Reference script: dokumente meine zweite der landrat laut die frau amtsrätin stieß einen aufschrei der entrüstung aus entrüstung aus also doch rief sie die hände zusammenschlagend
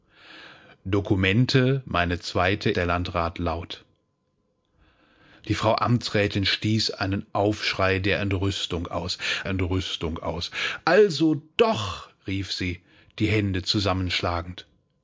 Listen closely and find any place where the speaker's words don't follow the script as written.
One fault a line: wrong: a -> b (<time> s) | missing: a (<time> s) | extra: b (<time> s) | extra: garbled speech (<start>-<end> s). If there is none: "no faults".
no faults